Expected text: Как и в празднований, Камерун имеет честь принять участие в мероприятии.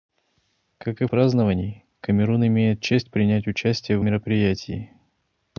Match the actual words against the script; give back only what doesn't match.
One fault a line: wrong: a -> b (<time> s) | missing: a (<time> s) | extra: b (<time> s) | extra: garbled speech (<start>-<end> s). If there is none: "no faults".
no faults